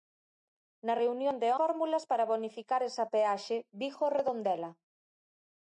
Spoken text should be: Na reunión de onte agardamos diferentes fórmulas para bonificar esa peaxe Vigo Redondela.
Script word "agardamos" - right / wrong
wrong